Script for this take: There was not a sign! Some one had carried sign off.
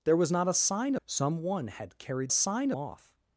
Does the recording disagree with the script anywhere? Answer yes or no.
no